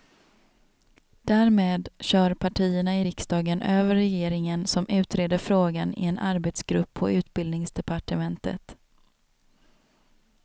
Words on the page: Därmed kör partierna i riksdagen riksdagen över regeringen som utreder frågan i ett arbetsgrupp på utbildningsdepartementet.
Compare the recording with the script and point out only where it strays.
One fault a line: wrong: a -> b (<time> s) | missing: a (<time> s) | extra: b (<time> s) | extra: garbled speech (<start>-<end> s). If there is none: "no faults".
missing: riksdagen (3.6 s)
wrong: ett -> en (6.1 s)